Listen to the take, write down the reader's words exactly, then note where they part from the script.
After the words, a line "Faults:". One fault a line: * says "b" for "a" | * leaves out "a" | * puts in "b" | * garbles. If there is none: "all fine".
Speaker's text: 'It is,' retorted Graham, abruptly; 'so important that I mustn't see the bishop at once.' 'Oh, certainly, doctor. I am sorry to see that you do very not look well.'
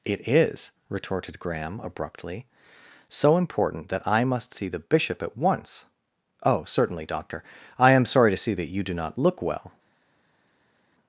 'It is,' retorted Graham, abruptly; 'so important that I must see the bishop at once.' 'Oh, certainly, doctor. I am sorry to see that you do not look well.'
Faults:
* says "must" for "mustn't"
* leaves out "very"